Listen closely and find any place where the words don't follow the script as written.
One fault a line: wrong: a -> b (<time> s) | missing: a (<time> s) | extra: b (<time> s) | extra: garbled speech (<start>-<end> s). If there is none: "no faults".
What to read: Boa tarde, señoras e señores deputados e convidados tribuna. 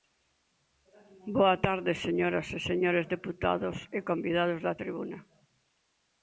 extra: da (4.7 s)